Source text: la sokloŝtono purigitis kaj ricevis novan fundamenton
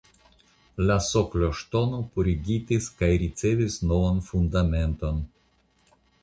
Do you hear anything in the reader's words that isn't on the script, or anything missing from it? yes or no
no